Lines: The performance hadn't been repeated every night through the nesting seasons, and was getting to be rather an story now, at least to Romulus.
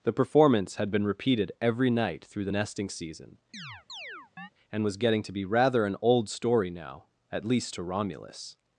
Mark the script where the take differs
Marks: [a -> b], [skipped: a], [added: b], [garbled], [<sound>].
The performance [hadn't -> had] been repeated every night through the nesting [seasons, -> season] [chirp] and was getting to be rather an [added: old] story now, at least to Romulus.